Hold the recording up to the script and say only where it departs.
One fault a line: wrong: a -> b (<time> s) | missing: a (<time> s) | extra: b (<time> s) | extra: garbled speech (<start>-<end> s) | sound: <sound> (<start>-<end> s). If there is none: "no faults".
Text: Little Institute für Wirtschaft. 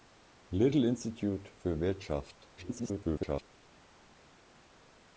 extra: garbled speech (2.6-3.5 s)